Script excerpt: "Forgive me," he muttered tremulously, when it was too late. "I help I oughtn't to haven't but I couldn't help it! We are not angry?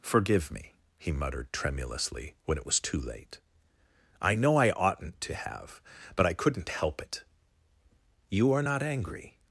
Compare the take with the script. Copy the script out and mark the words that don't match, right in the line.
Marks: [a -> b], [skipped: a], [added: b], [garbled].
"Forgive me," he muttered tremulously, when it was too late. "I [help -> know] I oughtn't to [haven't -> have] but I couldn't help it! [We -> You] are not angry?